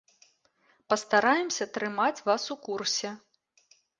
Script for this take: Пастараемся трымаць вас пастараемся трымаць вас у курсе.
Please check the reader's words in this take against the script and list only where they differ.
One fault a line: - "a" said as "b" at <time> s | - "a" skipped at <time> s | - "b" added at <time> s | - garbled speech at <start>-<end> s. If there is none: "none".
- "пастараемся трымаць вас" skipped at 2.4 s